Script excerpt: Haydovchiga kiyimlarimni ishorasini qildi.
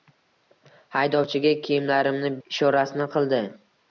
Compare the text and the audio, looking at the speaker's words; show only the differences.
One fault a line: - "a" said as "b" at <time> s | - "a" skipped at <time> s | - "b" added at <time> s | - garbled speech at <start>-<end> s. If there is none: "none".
none